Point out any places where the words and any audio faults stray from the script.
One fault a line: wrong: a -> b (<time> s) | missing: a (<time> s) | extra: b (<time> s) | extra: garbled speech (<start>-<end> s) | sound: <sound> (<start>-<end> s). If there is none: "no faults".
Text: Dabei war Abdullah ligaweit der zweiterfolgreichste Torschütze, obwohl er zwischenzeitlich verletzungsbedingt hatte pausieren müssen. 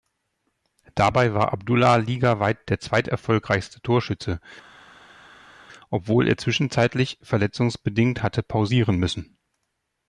no faults